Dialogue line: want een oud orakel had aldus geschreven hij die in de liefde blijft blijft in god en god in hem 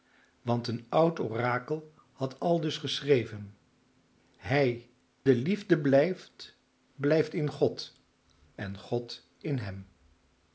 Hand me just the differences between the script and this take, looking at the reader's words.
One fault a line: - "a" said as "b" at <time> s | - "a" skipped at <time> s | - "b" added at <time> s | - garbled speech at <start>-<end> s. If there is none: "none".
- "die in" skipped at 4.9 s